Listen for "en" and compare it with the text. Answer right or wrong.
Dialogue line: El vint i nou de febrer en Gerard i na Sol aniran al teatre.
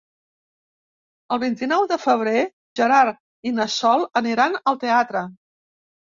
wrong